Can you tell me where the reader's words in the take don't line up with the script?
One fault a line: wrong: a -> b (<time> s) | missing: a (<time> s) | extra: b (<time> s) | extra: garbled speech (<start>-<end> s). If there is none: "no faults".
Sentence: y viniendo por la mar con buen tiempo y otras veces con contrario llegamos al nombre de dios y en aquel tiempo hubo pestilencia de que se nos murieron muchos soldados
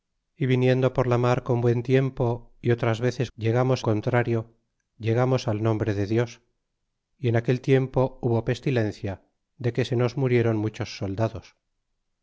wrong: con -> llegamos (3.4 s)